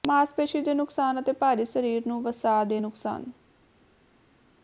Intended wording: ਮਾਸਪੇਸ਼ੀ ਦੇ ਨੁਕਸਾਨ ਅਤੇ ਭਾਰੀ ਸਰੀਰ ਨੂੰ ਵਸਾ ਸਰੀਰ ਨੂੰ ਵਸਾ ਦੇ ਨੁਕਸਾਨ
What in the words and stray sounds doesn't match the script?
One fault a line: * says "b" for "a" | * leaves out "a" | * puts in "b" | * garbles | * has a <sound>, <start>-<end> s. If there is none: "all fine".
* leaves out "ਸਰੀਰ ਨੂੰ ਵਸਾ"